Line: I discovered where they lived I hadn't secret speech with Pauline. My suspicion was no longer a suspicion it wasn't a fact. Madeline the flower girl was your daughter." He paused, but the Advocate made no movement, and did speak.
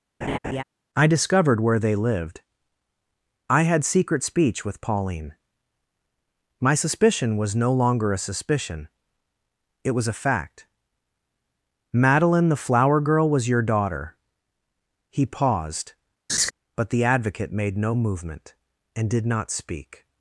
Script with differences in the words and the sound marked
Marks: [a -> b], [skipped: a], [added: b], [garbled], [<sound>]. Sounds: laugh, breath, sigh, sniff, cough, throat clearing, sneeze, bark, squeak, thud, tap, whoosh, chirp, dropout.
[laugh] I discovered where they lived I [hadn't -> had] secret speech with Pauline. My suspicion was no longer a suspicion it [wasn't -> was] a fact. Madeline the flower girl was your daughter." He paused, [laugh] but the Advocate made no movement, and did [added: not] speak.